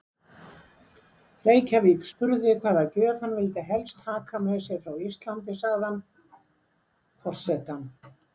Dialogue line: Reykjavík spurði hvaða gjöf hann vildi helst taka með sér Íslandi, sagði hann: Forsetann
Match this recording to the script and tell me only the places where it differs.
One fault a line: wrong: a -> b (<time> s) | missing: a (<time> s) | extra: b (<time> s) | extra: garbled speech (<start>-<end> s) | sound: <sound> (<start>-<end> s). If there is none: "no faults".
extra: frá (4.8 s)